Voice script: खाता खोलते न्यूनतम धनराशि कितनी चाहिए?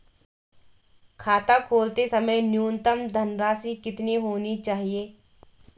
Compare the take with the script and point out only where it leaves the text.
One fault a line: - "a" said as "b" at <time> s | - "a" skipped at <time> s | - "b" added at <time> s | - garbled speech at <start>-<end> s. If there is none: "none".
- "समय" added at 2.0 s
- "होनी" added at 4.3 s